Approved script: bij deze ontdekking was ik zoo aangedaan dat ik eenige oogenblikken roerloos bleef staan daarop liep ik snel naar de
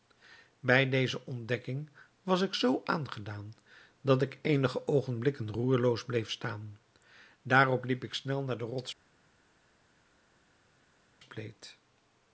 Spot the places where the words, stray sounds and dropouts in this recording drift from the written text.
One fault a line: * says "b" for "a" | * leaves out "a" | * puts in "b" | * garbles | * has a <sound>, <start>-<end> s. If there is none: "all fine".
all fine